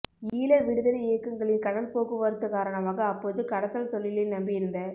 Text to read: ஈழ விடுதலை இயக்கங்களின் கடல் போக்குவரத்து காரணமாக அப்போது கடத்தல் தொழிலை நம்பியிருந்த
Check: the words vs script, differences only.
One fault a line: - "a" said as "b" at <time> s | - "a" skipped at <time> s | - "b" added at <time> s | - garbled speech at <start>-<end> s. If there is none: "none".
none